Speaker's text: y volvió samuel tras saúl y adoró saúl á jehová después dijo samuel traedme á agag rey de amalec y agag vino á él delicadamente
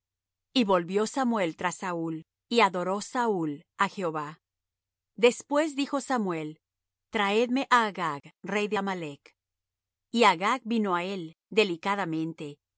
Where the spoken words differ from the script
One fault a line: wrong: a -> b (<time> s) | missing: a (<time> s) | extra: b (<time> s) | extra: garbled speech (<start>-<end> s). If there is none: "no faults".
no faults